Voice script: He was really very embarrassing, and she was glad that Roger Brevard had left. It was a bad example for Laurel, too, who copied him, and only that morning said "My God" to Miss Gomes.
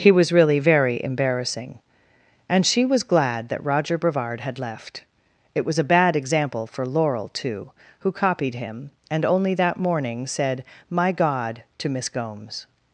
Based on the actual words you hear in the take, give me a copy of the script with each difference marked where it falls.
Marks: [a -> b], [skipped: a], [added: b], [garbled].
He was really very embarrassing, and she was glad that Roger Brevard had left. It was a bad example for Laurel, too, who copied him, and only that morning said "My God" to Miss Gomes.